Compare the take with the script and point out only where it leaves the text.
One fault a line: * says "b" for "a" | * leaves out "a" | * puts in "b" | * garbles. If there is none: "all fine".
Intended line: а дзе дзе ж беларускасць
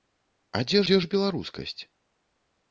all fine